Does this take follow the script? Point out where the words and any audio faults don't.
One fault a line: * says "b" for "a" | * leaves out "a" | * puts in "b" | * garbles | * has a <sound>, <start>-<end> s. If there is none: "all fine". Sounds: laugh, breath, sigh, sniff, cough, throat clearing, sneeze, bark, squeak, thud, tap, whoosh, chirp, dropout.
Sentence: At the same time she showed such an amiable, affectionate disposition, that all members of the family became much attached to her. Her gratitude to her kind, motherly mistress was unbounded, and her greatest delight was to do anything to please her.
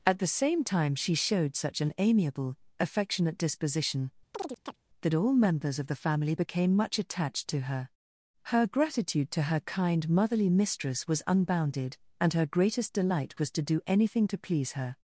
* has a chirp, 4.3-4.8 s